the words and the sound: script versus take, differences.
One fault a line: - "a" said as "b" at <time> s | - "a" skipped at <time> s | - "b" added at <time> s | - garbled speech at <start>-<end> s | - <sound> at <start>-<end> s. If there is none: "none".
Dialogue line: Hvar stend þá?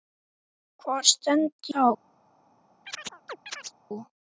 - chirp at 2.9-3.7 s